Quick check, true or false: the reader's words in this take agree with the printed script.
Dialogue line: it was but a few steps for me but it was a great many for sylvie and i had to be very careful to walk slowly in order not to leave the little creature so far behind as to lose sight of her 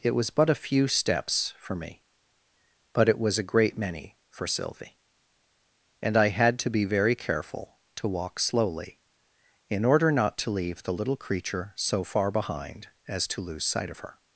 true